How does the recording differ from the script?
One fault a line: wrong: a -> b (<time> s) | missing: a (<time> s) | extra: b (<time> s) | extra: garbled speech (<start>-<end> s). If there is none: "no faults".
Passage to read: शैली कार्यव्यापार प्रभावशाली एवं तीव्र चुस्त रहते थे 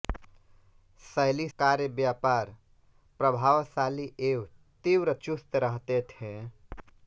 no faults